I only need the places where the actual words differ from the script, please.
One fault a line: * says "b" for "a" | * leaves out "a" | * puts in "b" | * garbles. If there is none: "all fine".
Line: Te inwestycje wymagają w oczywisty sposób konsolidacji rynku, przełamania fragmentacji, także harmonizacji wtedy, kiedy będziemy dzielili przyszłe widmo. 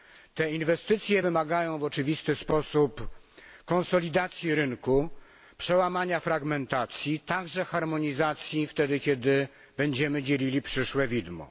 all fine